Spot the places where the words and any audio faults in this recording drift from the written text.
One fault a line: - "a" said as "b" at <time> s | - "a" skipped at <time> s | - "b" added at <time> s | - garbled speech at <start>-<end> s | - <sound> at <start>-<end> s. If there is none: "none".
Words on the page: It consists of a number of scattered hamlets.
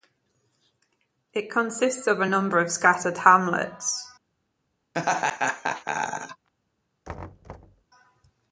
- laugh at 4.9-6.5 s
- thud at 7.0-7.8 s